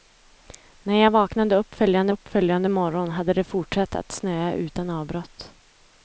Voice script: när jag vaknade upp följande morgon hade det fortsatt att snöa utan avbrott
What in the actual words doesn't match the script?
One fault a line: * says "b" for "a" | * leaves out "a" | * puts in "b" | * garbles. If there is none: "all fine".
* puts in "upp följande"